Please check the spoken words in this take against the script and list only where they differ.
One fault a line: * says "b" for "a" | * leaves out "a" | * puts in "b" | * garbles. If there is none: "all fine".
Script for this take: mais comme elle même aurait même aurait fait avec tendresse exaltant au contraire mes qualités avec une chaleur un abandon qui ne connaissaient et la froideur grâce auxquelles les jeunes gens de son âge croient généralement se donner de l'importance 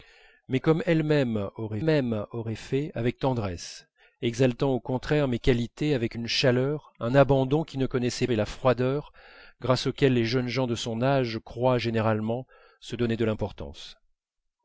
all fine